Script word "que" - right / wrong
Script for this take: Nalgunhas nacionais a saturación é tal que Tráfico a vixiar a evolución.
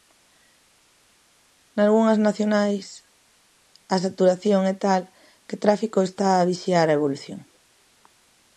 right